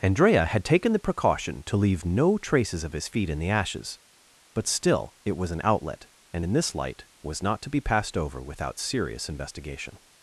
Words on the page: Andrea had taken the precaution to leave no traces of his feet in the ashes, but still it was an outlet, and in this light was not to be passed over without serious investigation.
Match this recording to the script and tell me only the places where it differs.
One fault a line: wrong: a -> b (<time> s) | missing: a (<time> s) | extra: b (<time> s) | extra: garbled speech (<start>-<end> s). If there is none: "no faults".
no faults